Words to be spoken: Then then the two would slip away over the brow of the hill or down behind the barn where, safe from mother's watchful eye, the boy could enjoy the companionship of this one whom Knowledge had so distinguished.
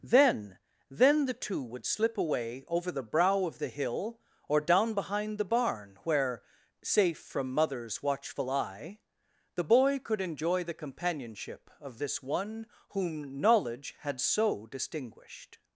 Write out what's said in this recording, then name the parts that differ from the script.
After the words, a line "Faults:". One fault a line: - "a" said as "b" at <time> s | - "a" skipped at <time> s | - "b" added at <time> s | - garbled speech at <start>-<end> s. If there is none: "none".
Then then the two would slip away over the brow of the hill or down behind the barn where, safe from mother's watchful eye, the boy could enjoy the companionship of this one whom Knowledge had so distinguished.
Faults:
none